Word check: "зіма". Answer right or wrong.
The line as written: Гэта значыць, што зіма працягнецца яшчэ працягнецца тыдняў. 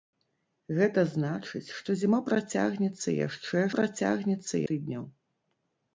right